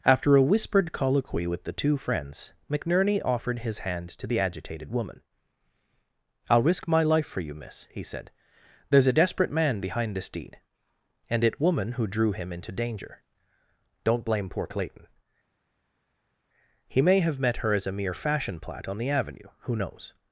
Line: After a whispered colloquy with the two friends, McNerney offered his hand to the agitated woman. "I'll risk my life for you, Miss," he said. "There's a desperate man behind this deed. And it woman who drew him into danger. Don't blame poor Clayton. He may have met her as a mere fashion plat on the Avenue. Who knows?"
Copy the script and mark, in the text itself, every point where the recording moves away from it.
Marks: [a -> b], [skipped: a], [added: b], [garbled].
After a whispered colloquy with the two friends, McNerney offered his hand to the agitated woman. "I'll risk my life for you, Miss," he said. "There's a desperate man behind this deed. And it woman who drew him into danger. Don't blame poor Clayton. He may have met her as a mere fashion plat on the Avenue. Who knows?"